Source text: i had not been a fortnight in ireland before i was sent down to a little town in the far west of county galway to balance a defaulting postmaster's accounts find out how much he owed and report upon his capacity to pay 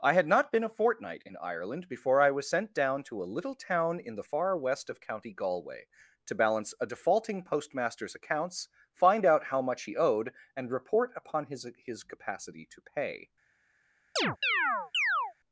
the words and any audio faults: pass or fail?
fail